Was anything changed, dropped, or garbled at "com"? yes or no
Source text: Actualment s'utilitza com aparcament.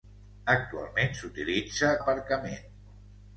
yes